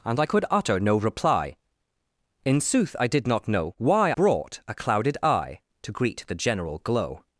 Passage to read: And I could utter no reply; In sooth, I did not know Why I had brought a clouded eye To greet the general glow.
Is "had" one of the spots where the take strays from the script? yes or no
yes